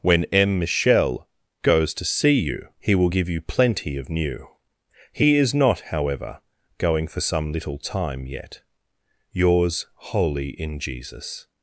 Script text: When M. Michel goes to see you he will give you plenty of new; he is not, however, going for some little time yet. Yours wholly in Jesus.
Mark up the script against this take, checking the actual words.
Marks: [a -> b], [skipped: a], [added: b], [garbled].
When M. Michel goes to see you he will give you plenty of new; he is not, however, going for some little time yet. Yours wholly in Jesus.